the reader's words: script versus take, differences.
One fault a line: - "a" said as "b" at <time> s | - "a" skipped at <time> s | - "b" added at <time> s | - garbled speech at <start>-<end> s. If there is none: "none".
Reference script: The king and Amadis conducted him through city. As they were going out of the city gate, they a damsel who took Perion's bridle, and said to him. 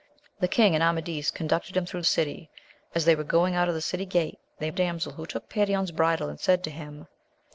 none